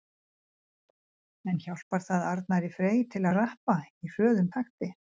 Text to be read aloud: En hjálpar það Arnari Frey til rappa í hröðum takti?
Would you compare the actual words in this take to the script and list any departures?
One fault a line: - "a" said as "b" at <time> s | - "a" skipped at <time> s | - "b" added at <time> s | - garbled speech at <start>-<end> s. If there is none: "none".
none